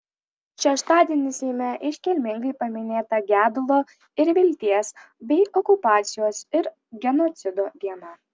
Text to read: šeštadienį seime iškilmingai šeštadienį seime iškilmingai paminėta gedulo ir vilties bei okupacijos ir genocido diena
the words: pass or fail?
fail